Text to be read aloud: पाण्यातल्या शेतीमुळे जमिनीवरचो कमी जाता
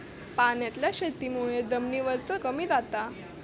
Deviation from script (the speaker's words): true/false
false